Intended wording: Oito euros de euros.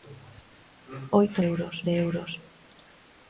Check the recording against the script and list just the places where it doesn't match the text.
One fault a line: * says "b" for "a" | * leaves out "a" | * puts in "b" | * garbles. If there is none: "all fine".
all fine